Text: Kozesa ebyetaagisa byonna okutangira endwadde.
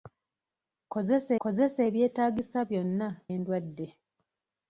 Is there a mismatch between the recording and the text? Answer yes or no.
yes